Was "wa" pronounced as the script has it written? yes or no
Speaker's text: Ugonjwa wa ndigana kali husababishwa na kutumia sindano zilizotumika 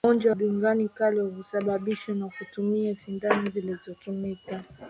no